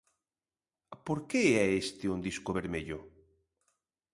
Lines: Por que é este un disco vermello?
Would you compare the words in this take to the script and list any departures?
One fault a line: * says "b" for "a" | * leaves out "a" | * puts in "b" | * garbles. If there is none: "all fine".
all fine